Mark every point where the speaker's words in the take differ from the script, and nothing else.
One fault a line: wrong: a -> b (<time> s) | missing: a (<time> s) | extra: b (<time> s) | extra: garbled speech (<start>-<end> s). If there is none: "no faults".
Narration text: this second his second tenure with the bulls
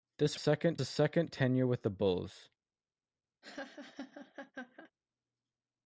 no faults